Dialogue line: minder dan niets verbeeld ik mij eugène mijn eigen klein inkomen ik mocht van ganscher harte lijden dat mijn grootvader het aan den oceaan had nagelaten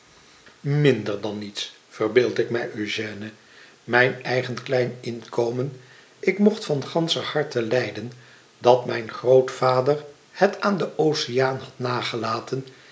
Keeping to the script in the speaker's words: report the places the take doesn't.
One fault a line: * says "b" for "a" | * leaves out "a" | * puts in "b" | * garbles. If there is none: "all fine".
all fine